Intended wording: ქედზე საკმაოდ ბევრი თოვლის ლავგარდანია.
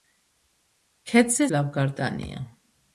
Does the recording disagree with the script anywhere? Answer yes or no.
yes